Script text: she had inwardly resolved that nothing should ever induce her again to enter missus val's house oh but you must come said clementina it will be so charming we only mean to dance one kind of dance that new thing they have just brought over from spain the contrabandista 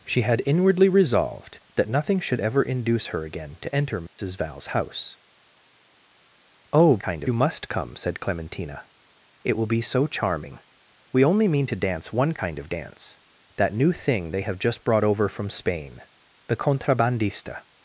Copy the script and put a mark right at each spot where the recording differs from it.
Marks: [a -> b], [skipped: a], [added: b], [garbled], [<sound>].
she had inwardly resolved that nothing should ever induce her again to enter missus [dropout] val's house oh [but -> kind] you must come said clementina it will be so charming we only mean to dance one kind of dance that new thing they have just brought over from spain the contrabandista